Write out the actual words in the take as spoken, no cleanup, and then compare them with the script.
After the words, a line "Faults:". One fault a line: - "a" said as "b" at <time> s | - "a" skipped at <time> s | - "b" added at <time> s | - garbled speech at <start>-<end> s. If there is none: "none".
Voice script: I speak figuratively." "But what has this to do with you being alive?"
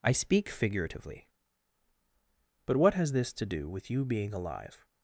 I speak figuratively." "But what has this to do with you being alive?"
Faults:
none